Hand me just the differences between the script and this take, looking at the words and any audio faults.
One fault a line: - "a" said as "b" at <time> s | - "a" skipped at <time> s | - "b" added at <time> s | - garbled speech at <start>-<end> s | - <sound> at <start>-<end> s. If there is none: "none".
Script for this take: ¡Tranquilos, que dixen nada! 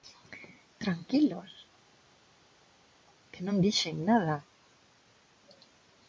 - "non" added at 3.5 s